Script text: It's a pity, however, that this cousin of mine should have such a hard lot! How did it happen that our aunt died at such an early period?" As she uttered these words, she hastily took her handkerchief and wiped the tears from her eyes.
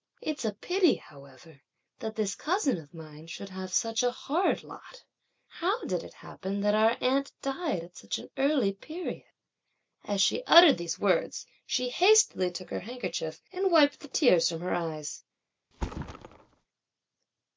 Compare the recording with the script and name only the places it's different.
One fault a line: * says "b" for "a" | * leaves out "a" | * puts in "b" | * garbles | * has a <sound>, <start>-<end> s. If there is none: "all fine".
* has a thud, 15.7-16.6 s